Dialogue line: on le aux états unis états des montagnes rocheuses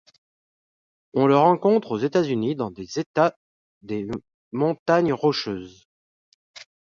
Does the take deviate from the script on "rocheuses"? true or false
false